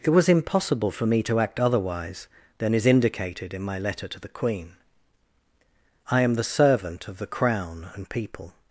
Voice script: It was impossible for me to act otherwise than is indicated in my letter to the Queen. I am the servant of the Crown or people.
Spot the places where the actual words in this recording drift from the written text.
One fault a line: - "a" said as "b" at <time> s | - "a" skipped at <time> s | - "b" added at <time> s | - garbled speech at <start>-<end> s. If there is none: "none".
- "or" said as "and" at 7.9 s